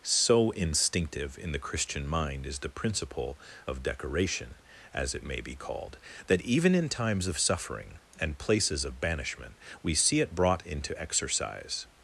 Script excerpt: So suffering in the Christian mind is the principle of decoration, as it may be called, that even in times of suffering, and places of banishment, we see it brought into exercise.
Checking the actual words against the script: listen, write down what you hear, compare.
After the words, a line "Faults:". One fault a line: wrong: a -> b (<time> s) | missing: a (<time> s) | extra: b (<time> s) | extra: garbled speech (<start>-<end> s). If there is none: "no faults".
So instinctive in the Christian mind is the principle of decoration, as it may be called, that even in times of suffering, and places of banishment, we see it brought into exercise.
Faults:
wrong: suffering -> instinctive (0.5 s)